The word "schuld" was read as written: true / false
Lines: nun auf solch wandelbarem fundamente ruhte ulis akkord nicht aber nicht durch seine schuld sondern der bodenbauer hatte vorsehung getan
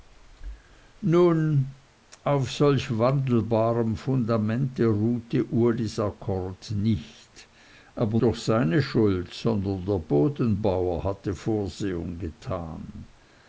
true